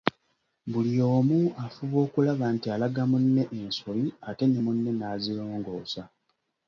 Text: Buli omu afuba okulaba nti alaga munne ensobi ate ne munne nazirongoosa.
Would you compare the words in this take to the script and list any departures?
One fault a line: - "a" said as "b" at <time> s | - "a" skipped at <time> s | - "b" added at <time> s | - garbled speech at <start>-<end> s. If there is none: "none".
none